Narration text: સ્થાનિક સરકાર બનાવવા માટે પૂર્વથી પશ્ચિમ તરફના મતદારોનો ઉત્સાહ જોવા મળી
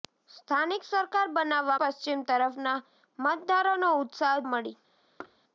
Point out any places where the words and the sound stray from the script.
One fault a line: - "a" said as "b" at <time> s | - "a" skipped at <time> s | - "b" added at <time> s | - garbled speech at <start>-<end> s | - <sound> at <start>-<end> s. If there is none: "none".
- "માટે પૂર્વથી" skipped at 1.8 s
- "જોવા" skipped at 4.4 s
- thud at 5.2-5.4 s